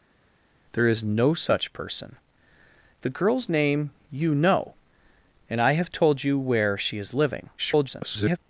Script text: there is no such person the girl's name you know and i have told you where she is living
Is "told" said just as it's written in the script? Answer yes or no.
yes